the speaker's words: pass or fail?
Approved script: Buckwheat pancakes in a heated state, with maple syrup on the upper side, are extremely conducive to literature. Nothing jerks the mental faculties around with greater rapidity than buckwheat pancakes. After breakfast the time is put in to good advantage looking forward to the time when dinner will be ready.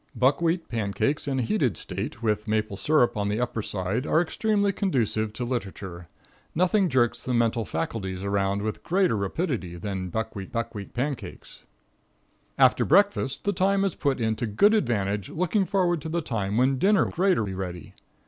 fail